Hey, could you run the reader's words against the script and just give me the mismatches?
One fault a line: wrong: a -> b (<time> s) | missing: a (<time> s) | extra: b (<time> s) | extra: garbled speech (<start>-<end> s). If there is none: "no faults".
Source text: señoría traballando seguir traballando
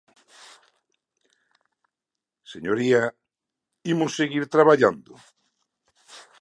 wrong: traballando -> imos (3.9 s)